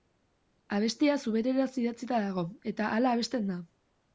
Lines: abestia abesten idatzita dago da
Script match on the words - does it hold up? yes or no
no